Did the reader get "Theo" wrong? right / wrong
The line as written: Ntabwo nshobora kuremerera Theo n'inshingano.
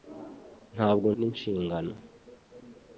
wrong